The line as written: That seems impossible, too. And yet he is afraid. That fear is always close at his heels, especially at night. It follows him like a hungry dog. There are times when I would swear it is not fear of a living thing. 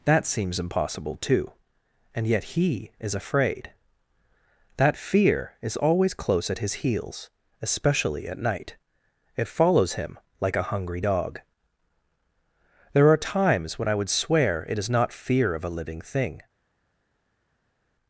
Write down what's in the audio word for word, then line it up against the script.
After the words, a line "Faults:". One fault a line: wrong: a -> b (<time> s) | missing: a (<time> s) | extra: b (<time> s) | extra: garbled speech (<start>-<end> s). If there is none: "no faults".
That seems impossible, too. And yet he is afraid. That fear is always close at his heels, especially at night. It follows him like a hungry dog. There are times when I would swear it is not fear of a living thing.
Faults:
no faults